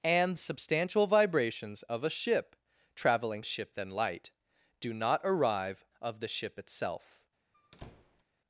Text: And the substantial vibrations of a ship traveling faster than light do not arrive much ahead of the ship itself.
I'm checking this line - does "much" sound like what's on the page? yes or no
no